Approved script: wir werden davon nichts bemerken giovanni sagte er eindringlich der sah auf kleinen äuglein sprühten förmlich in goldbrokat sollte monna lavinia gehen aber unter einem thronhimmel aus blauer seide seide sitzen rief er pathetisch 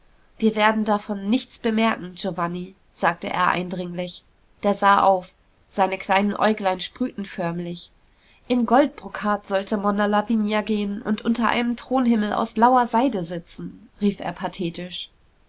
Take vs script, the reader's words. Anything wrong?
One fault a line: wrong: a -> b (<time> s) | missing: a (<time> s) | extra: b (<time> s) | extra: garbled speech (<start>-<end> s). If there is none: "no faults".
extra: seine (5.7 s)
wrong: aber -> und (11.0 s)
missing: seide (13.2 s)